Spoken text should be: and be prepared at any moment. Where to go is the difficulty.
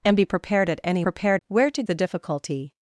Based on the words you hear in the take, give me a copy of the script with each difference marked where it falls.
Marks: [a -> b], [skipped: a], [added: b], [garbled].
and be prepared at any [moment. -> prepared] Where to [skipped: go is] the difficulty.